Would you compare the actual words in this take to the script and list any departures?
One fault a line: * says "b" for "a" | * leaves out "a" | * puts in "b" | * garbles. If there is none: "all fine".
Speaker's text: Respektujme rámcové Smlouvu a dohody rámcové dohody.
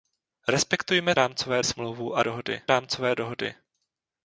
all fine